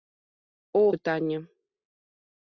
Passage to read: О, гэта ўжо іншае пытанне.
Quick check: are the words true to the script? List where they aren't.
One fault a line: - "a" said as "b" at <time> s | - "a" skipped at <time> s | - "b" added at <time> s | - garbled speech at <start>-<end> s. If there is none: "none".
- "гэта ўжо іншае" skipped at 0.8 s